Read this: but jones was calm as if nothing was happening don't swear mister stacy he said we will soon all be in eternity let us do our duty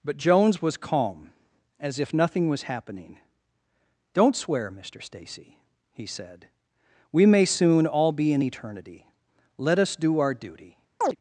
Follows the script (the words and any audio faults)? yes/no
no